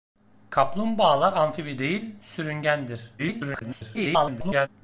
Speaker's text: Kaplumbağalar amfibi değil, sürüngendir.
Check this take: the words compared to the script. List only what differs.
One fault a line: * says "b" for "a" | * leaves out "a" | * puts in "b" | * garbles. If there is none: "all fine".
* garbles